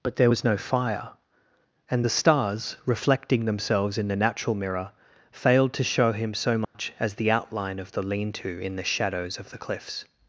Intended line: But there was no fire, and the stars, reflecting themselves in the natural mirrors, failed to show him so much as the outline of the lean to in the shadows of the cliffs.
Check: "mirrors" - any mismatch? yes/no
yes